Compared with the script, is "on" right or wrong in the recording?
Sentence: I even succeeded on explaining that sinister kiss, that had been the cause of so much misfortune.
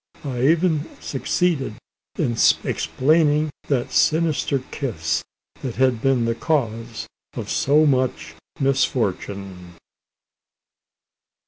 wrong